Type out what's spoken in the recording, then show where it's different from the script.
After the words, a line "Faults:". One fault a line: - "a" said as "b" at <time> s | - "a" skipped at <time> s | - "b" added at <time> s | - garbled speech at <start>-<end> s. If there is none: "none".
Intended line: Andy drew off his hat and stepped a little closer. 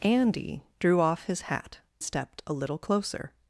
Andy drew off his hat stepped a little closer.
Faults:
- "and" skipped at 1.8 s